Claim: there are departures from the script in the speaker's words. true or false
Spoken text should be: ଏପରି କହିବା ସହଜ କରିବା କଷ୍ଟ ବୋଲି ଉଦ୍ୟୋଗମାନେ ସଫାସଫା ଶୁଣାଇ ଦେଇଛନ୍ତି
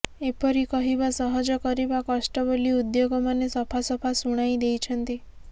false